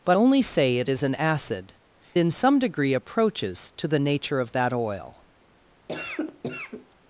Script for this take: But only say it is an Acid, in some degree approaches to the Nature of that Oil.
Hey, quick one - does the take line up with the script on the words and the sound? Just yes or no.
no